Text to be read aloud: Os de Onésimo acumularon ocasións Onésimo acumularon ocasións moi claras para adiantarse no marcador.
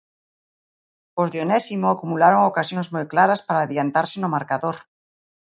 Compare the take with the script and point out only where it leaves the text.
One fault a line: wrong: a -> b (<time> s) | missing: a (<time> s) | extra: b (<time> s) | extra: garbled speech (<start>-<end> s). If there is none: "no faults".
missing: Onésimo acumularon ocasións (2.9 s)